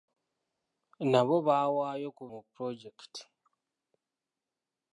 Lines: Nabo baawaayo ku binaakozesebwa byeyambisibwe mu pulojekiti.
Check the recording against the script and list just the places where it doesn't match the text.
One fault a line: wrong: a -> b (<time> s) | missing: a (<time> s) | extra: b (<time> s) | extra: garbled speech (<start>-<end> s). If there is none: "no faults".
missing: binaakozesebwa byeyambisibwe (2.2 s)